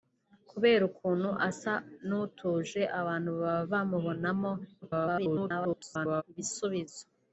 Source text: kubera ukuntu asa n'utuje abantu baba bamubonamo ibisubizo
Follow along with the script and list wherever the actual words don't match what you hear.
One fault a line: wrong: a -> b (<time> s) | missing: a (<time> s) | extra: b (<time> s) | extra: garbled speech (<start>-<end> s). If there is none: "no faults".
extra: garbled speech (4.8-6.2 s)